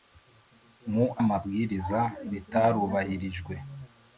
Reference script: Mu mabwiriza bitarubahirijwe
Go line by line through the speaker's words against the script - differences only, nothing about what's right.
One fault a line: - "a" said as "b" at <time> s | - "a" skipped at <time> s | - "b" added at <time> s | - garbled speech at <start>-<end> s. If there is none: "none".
none